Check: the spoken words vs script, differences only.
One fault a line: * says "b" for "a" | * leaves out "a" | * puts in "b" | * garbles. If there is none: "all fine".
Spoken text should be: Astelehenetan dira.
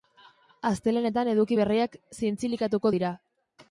* puts in "eduki berriak zintzilikatuko"